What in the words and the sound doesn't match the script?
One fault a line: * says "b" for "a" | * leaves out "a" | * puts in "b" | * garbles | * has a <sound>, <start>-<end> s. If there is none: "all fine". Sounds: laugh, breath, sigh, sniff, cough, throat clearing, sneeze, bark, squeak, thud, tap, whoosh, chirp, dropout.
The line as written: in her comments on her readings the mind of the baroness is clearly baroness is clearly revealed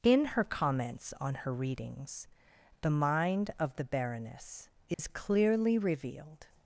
* has a dropout, 4.9-5.0 s
* leaves out "baroness is clearly"